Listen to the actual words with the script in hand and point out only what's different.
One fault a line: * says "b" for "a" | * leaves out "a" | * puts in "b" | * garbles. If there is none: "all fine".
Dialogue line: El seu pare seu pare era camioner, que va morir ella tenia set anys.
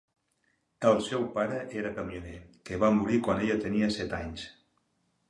* leaves out "seu pare"
* puts in "quan"